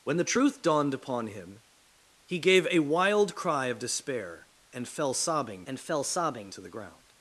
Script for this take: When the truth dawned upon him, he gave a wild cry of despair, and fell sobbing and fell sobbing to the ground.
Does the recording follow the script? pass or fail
pass